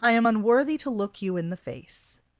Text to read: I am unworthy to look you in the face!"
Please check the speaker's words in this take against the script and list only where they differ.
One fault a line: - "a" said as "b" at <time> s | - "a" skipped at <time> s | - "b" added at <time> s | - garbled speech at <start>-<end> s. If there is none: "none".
none